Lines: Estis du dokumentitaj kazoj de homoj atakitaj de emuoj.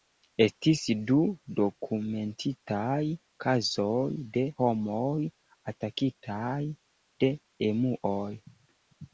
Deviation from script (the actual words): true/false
false